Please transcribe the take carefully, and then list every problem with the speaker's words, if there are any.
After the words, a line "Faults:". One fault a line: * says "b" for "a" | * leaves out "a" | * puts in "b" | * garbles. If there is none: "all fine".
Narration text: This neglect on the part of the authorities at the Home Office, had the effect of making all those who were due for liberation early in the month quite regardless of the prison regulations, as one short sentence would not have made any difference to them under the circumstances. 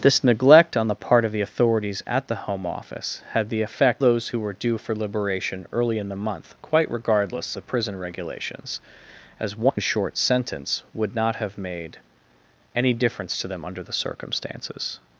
This neglect on the part of the authorities at the Home Office, had the effect those who were due for liberation early in the month quite regardless the prison regulations, as one short sentence would not have made any difference to them under the circumstances.
Faults:
* leaves out "of making all"
* leaves out "of"